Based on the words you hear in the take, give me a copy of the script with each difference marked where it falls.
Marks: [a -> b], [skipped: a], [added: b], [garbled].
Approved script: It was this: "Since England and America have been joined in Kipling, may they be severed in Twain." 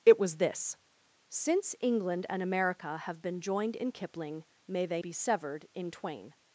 It was this: "Since England and America have been joined in Kipling, may they be severed in Twain."